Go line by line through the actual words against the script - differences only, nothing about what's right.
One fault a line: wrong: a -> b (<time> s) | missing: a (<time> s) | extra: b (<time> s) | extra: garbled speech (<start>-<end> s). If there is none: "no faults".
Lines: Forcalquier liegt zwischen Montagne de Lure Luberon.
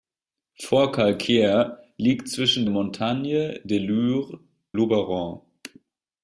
no faults